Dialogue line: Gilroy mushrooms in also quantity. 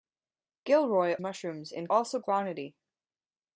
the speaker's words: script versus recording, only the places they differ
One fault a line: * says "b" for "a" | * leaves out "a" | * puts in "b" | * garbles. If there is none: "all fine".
all fine